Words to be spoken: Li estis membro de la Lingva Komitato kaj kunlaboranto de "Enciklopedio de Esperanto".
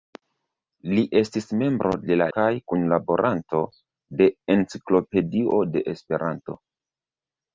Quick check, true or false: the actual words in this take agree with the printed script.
false